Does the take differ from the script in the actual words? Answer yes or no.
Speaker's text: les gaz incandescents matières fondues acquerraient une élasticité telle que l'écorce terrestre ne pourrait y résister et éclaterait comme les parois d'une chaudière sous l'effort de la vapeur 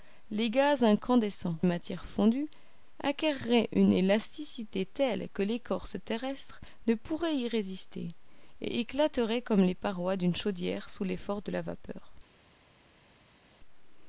no